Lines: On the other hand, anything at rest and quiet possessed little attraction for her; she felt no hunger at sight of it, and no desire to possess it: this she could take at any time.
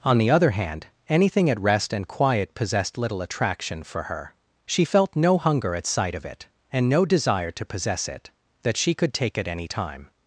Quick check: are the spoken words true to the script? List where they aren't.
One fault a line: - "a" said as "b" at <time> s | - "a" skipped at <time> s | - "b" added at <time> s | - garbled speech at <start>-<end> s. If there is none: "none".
- "this" said as "that" at 8.6 s